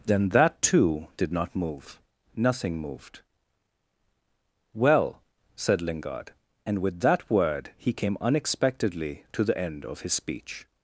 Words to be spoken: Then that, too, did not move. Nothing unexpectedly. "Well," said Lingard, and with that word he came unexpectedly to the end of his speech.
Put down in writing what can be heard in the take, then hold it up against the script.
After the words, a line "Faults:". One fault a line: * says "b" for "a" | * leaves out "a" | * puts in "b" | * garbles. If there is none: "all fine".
Then that, too, did not move. Nothing moved. "Well," said Lingard, and with that word he came unexpectedly to the end of his speech.
Faults:
* says "moved" for "unexpectedly"